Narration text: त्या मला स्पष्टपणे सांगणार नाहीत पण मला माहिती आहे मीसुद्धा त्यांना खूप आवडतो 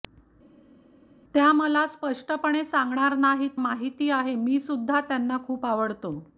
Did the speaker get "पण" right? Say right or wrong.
wrong